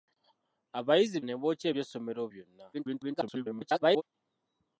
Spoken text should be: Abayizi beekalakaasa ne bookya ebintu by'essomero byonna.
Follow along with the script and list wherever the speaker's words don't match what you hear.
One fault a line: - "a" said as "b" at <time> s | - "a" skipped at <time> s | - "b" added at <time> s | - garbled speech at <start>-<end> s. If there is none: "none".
- "beekalakaasa" skipped at 1.2 s
- "ebintu" skipped at 1.7 s
- garbled speech at 2.7-4.0 s